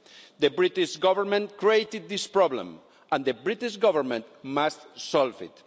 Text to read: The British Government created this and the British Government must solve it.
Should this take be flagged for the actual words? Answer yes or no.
yes